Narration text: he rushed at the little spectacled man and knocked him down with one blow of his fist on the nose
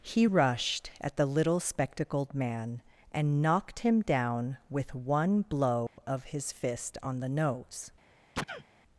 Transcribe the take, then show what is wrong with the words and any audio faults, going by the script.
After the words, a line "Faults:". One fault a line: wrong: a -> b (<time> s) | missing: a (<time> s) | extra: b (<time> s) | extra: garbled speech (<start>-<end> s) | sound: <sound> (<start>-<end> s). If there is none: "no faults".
he rushed at the little spectacled man and knocked him down with one blow of his fist on the nose
Faults:
sound: dropout (5.9-6.0 s)
sound: sneeze (8.4-8.7 s)